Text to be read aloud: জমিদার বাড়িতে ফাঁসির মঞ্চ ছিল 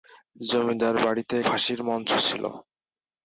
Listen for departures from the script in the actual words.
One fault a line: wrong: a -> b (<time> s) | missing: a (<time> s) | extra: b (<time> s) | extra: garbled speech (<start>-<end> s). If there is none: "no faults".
no faults